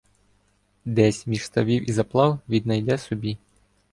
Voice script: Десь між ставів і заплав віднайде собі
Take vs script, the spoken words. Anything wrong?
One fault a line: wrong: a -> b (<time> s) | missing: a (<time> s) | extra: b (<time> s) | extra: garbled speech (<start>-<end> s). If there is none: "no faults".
no faults